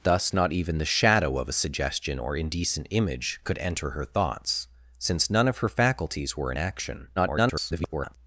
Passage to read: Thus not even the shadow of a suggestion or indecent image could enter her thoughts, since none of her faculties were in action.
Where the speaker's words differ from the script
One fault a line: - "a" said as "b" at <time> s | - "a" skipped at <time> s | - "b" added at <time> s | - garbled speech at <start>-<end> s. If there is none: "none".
- garbled speech at 7.2-8.2 s